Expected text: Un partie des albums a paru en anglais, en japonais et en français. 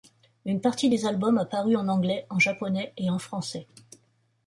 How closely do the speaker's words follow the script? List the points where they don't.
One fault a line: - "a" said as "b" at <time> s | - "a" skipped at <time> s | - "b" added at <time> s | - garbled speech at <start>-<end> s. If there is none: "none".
- "Un" said as "Une" at 0.5 s